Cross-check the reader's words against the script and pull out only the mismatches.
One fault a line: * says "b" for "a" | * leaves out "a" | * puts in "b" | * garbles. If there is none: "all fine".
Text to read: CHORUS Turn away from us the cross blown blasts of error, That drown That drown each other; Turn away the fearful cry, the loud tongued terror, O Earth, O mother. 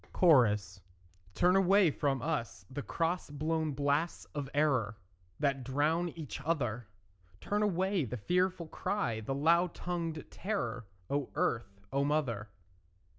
* leaves out "That drown"